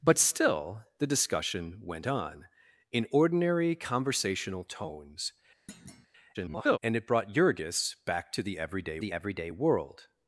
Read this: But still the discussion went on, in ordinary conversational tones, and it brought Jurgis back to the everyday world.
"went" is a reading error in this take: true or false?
false